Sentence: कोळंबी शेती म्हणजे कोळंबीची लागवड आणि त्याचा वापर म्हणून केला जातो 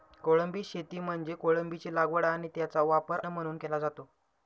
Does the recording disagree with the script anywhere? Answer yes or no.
no